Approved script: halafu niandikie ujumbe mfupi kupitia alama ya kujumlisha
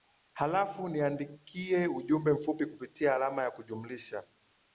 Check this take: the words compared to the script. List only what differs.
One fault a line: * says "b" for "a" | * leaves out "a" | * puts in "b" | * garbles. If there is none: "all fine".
all fine